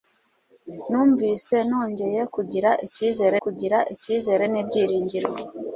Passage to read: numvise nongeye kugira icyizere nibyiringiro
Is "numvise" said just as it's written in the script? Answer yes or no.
yes